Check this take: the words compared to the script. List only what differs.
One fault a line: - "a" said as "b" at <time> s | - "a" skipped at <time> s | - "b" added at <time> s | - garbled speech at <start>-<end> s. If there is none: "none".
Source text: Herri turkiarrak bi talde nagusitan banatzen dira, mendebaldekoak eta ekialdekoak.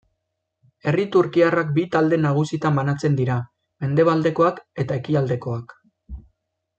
none